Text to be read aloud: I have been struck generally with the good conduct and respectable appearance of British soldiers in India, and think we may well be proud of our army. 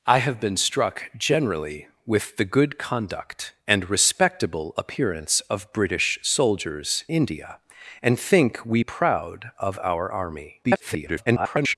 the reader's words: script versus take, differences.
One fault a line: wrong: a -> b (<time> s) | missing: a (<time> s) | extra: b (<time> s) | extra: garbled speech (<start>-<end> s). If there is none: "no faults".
missing: in (7.0 s)
missing: may well be (8.8 s)
extra: garbled speech (10.6-11.8 s)